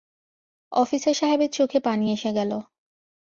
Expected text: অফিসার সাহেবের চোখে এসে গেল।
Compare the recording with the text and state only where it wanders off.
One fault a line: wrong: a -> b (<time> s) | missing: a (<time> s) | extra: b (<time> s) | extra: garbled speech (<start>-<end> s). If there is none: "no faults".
extra: পানি (1.8 s)